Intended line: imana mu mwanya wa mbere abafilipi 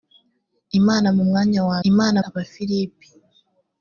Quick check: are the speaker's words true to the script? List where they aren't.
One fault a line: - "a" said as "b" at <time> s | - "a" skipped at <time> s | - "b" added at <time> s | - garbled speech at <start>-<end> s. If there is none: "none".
- "mbere" said as "imana" at 1.9 s